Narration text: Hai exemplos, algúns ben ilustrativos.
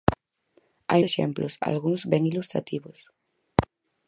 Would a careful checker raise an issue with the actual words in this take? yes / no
no